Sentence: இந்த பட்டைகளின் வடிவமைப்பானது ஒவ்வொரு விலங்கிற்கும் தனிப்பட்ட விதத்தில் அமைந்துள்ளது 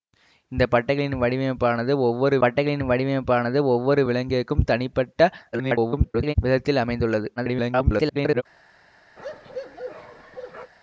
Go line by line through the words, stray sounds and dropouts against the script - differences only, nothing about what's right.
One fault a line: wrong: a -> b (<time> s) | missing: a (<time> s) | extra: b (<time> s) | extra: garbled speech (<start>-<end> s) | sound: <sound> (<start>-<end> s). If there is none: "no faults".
extra: பட்டைகளின் வடிவமைப்பானது ஒவ்வொரு (2.4 s)
extra: garbled speech (5.5-6.3 s)
extra: garbled speech (7.4-8.4 s)
sound: bark (9.2-10.7 s)